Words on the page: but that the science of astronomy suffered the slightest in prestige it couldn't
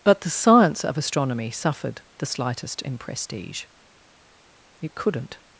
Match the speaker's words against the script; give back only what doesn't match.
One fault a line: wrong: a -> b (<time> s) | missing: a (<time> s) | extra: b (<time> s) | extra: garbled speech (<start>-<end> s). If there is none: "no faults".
missing: that (0.2 s)